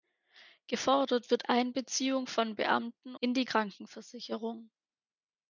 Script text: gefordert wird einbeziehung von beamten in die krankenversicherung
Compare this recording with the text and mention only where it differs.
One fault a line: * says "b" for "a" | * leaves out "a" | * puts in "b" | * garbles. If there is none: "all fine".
all fine